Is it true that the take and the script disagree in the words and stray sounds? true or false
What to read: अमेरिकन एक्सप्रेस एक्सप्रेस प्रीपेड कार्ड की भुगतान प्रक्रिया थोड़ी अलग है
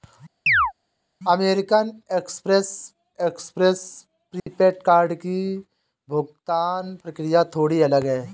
true